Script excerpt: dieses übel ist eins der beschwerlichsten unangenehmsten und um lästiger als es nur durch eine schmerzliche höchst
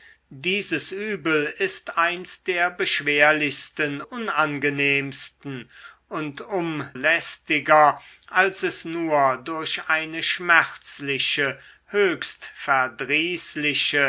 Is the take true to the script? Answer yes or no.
yes